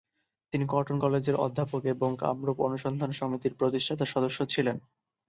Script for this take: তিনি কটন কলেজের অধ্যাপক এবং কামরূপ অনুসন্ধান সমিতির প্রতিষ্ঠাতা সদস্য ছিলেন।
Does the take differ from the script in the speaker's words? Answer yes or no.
no